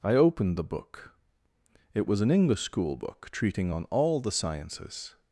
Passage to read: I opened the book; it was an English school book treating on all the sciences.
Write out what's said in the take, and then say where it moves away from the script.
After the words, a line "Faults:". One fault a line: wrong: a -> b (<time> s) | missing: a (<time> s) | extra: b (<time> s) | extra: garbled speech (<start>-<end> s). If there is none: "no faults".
I opened the book; it was an English school book treating on all the sciences.
Faults:
no faults